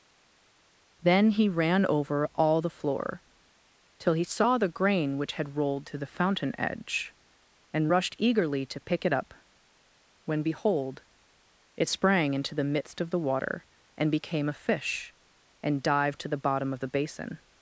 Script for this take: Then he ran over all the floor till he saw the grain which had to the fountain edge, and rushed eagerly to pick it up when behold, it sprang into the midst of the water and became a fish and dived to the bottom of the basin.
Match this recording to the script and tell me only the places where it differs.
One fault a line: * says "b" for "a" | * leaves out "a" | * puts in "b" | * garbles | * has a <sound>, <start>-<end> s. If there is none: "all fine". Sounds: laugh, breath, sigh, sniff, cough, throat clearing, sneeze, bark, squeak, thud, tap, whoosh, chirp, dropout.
* puts in "rolled"